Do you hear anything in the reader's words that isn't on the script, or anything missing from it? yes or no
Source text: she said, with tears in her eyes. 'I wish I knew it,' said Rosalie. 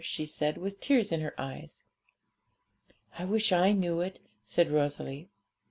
no